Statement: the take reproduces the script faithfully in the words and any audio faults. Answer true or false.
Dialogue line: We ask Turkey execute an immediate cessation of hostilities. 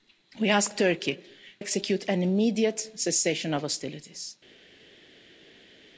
true